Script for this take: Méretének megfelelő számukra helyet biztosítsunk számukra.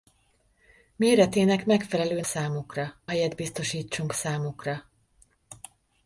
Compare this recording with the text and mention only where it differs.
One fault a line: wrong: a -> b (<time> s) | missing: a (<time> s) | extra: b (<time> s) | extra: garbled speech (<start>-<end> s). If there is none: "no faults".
no faults